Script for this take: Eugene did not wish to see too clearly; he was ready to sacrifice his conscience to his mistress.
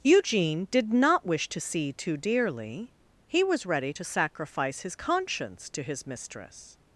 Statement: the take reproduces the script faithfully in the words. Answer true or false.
false